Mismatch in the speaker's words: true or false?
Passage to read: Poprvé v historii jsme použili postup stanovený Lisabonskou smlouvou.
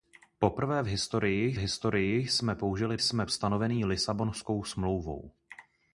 true